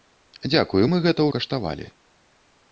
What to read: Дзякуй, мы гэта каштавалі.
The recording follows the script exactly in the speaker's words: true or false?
true